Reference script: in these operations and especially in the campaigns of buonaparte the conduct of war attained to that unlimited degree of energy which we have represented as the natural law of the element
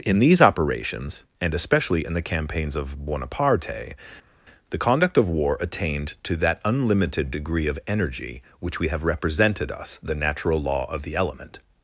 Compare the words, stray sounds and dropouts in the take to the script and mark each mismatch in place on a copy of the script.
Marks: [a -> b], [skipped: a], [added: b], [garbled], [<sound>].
in these operations and especially in the campaigns of buonaparte the conduct of war attained to that unlimited degree of energy which we have represented [as -> us] the natural law of the element